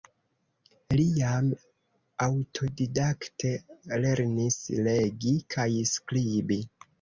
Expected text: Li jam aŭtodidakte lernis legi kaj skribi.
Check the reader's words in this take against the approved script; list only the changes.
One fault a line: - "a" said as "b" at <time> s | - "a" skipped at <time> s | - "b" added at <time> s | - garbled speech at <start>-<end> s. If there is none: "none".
none